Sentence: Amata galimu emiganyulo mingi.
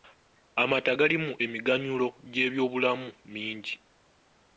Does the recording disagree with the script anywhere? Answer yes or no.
yes